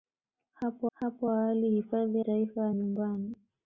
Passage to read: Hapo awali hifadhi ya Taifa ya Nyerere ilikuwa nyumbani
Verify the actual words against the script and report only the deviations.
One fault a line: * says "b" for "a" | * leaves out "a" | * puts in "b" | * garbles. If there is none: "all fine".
* puts in "hapo"
* leaves out "ya"
* leaves out "Nyerere ilikuwa"